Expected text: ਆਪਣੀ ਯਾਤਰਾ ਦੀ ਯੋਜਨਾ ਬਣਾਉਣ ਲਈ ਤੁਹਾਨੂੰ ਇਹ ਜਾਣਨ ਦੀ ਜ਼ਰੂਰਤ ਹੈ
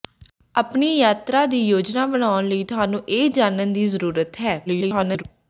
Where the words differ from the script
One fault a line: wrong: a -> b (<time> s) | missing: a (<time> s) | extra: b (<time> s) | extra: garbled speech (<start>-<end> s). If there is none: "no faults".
extra: garbled speech (4.7-5.2 s)